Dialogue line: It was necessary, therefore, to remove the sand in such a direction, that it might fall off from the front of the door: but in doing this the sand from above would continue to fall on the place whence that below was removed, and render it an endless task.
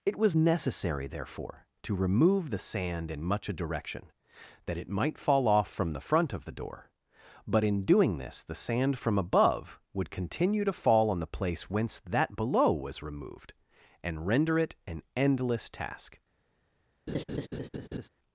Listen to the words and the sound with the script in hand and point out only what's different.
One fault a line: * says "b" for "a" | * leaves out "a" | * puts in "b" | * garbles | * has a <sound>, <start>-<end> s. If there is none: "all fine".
* says "much" for "such"
* has a laugh, 17.1-18.1 s